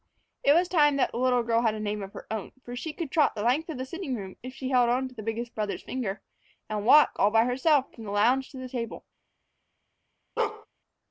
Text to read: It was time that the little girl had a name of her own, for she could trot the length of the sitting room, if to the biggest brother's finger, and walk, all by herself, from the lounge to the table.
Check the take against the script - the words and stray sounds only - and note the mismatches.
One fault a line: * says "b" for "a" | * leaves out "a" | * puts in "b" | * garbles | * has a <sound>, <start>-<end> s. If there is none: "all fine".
* puts in "she held on"
* has a bark, 10.4-10.7 s